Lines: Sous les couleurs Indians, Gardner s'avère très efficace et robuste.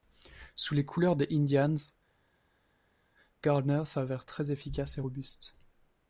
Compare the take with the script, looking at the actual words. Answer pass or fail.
fail